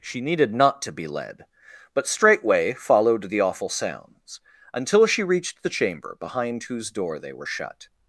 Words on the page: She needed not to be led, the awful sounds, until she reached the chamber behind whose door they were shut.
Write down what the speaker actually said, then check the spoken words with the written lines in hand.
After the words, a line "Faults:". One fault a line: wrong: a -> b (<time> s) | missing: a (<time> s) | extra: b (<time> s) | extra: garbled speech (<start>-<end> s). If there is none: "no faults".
She needed not to be led, but straightway followed the awful sounds, until she reached the chamber behind whose door they were shut.
Faults:
extra: but straightway followed (1.9 s)